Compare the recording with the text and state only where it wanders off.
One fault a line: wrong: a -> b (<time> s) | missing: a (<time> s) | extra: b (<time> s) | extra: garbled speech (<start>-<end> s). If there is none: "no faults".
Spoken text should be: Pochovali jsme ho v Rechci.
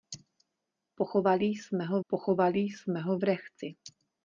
extra: pochovali jsme ho (2.1 s)